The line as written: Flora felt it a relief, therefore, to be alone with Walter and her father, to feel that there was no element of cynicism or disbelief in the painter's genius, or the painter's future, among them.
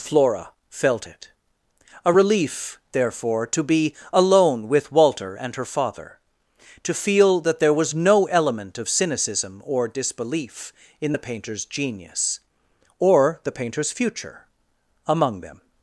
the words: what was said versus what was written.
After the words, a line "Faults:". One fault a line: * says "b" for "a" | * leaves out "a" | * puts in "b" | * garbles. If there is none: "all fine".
Flora felt it a relief, therefore, to be alone with Walter and her father, to feel that there was no element of cynicism or disbelief in the painter's genius, or the painter's future, among them.
Faults:
all fine